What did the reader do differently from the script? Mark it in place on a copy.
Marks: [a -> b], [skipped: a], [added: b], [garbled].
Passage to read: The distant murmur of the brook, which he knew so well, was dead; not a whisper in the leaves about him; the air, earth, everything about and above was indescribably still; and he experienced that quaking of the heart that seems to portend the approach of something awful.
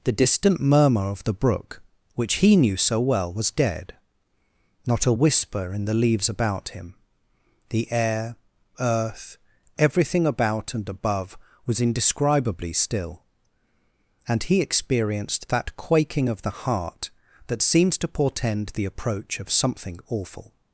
The distant murmur of the brook, which he knew so well, was dead; not a whisper in the leaves about him; the air, earth, everything about and above was indescribably still; and he experienced that quaking of the heart that seems to portend the approach of something awful.